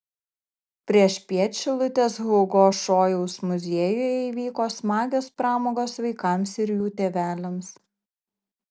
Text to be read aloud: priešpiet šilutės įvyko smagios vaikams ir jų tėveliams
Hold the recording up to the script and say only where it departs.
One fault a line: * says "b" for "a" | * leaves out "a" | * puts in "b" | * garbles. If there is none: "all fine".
* puts in "hugo šojaus muziejuje"
* puts in "pramogos"